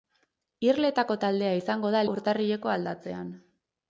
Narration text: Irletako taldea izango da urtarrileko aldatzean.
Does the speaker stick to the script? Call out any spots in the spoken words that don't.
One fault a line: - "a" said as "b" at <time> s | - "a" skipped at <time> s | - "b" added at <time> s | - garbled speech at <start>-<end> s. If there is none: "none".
none